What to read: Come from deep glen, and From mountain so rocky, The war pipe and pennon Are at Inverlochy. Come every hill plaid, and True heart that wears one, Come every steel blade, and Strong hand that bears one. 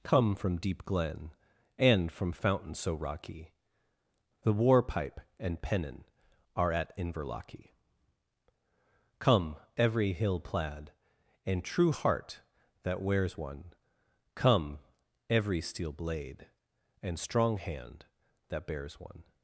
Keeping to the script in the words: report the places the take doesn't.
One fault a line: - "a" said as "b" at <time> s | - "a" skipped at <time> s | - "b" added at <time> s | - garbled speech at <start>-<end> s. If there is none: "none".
- "mountain" said as "fountain" at 2.3 s